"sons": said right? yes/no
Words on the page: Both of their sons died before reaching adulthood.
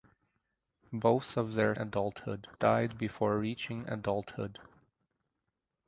no